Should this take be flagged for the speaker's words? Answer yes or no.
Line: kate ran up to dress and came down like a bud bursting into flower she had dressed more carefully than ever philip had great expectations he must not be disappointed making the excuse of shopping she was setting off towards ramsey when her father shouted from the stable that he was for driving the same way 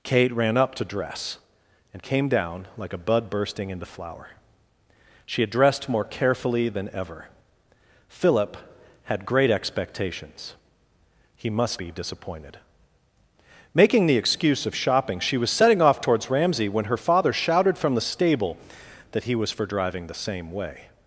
yes